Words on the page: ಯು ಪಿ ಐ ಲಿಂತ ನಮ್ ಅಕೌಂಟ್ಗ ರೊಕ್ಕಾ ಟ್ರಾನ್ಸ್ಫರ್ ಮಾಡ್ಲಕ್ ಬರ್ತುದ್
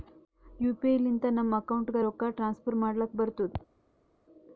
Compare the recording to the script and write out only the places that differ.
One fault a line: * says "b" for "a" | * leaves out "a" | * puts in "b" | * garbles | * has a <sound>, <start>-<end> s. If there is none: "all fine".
all fine